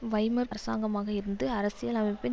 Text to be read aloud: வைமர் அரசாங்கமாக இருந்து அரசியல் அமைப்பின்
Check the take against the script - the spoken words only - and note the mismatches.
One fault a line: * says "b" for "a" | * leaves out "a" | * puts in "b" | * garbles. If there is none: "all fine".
all fine